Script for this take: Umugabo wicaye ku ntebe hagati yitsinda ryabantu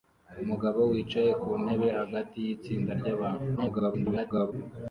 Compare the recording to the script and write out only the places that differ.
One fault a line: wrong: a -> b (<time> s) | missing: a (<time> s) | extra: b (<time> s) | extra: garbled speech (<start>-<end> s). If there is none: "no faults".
extra: garbled speech (3.6-4.5 s)